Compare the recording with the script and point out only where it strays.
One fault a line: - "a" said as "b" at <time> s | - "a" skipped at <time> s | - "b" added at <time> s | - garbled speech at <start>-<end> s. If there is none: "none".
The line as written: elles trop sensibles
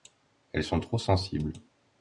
- "sont" added at 0.6 s